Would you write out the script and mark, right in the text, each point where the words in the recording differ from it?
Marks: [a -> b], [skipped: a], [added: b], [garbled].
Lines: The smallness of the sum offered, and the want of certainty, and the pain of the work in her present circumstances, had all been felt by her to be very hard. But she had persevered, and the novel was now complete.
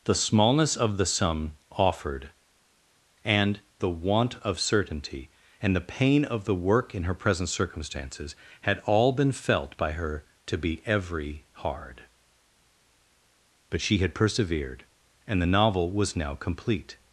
The smallness of the sum offered, and the want of certainty, and the pain of the work in her present circumstances, had all been felt by her to be [very -> every] hard. But she had persevered, and the novel was now complete.